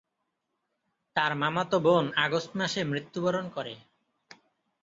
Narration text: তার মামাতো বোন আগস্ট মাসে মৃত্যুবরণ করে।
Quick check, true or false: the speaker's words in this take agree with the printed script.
true